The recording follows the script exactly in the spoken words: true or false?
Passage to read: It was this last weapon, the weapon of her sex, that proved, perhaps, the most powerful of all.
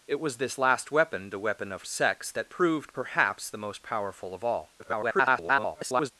false